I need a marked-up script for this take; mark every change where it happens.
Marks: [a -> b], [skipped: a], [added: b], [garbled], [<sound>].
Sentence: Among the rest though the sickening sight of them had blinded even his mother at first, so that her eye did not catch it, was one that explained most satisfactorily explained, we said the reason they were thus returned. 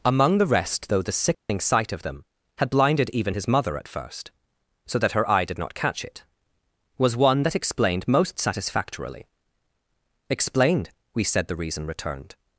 Among the rest though the sickening [dropout] sight of them had blinded even his mother at first, so that her eye did not catch it, was one that explained most satisfactorily explained, we said the reason [skipped: they were thus] returned.